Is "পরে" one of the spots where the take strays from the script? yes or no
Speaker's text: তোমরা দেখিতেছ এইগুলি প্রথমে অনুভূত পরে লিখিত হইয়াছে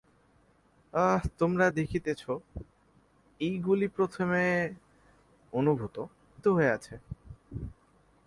yes